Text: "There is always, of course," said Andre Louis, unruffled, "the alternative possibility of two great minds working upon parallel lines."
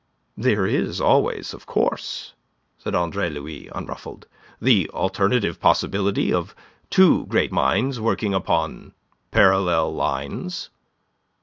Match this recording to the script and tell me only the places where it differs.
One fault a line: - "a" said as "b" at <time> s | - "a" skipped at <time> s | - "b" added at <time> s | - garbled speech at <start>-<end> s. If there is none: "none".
none